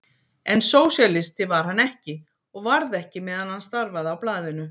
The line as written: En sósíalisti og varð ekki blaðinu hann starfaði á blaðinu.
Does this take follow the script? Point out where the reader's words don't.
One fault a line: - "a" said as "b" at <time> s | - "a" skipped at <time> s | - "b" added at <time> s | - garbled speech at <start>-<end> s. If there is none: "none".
- "var hann ekki" added at 1.5 s
- "blaðinu" said as "meðan" at 3.3 s